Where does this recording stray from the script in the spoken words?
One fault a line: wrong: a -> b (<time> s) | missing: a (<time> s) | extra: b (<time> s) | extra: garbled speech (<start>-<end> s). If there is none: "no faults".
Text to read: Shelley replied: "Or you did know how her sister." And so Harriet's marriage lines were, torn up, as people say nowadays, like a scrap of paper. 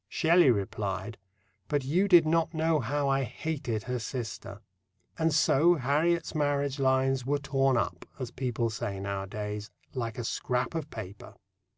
wrong: Or -> But (1.7 s)
extra: not (2.2 s)
extra: I hated (3.1 s)